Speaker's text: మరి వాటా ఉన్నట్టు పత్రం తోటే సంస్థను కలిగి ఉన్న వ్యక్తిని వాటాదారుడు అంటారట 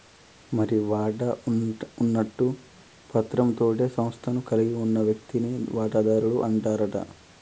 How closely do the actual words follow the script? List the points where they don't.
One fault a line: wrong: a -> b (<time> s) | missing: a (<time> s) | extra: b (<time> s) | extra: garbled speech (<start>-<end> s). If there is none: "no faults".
no faults